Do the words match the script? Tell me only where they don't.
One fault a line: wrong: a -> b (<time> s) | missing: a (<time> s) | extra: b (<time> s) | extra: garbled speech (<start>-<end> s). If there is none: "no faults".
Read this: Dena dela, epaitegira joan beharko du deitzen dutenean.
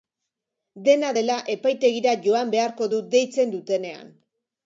no faults